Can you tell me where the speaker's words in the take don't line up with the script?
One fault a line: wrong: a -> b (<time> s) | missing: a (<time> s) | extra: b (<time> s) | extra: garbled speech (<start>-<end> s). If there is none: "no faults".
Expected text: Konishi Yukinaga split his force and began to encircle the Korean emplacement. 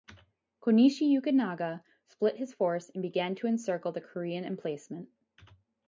no faults